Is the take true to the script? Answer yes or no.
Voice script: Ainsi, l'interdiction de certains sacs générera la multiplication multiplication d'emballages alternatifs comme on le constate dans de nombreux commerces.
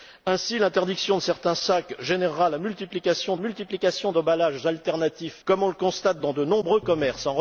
yes